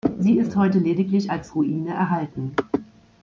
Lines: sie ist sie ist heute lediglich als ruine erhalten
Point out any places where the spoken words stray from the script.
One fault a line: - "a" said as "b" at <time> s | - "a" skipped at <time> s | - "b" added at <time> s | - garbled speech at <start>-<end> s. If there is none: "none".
- "sie ist" skipped at 0.6 s